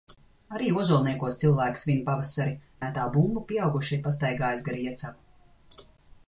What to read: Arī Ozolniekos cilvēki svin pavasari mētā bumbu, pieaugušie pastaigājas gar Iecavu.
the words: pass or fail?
pass